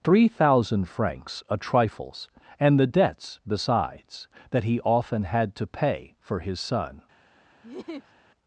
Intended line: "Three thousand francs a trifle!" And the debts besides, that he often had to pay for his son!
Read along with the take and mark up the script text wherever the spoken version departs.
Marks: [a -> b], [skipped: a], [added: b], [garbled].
"Three thousand francs a [trifle!" -> trifles] And the debts besides, that he often had to pay for his son!